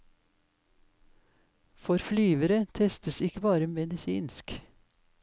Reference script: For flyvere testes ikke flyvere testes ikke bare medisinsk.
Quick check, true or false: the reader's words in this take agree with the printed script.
false